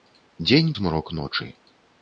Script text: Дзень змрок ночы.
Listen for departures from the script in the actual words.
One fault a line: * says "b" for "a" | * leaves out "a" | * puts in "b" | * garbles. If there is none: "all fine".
all fine